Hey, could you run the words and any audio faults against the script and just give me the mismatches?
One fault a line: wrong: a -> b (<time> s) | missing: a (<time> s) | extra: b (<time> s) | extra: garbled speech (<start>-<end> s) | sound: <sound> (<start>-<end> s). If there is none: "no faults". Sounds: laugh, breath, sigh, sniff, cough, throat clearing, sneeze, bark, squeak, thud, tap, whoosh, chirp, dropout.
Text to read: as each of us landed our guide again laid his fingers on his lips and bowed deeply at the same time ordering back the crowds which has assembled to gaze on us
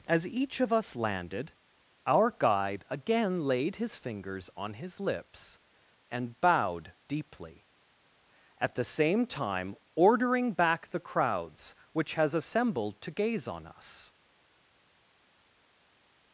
no faults